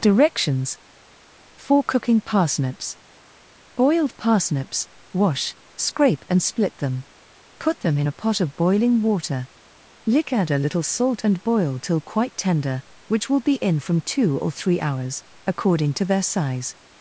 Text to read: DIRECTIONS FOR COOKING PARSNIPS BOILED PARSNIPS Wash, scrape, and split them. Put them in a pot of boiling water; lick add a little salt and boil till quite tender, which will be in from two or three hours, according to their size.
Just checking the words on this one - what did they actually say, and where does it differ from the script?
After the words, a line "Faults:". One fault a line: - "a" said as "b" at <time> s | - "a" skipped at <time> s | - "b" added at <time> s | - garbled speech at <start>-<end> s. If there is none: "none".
DIRECTIONS FOR COOKING PARSNIPS BOILED PARSNIPS Wash, scrape, and split them. Put them in a pot of boiling water; lick add a little salt and boil till quite tender, which will be in from two or three hours, according to their size.
Faults:
none